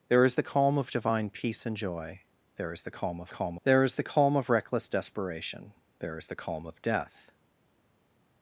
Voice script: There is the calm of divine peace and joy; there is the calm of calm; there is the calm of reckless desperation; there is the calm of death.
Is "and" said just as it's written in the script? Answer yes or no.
yes